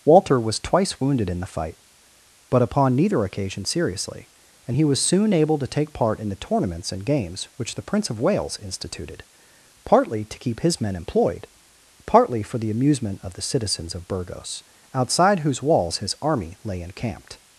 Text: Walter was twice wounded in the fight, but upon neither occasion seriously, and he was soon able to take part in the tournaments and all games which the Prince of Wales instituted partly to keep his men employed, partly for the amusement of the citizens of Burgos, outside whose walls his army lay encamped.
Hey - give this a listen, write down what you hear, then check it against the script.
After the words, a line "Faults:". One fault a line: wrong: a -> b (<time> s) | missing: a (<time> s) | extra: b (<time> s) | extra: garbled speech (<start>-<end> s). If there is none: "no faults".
Walter was twice wounded in the fight, but upon neither occasion seriously, and he was soon able to take part in the tournaments and games which the Prince of Wales instituted partly to keep his men employed, partly for the amusement of the citizens of Burgos, outside whose walls his army lay encamped.
Faults:
missing: all (7.0 s)